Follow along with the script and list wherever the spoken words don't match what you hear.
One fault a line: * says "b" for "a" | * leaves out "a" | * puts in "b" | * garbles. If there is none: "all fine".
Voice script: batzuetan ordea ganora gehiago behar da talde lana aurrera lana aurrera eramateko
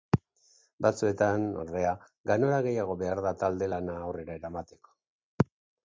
* leaves out "lana aurrera"